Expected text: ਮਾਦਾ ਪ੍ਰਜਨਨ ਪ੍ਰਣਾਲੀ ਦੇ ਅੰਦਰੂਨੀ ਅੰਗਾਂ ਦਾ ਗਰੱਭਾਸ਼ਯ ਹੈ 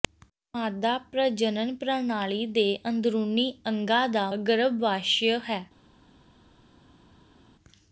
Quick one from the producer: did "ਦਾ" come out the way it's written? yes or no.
yes